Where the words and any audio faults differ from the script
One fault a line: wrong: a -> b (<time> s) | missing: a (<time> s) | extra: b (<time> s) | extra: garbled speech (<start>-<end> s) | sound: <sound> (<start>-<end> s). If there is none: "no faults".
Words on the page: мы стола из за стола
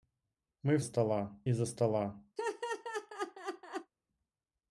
sound: laugh (2.4-3.9 s)